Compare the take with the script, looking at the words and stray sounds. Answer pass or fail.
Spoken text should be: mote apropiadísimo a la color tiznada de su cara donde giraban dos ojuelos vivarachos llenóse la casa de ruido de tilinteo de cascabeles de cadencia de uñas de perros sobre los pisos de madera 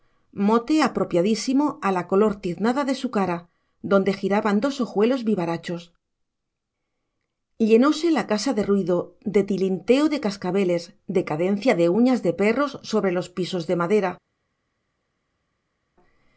pass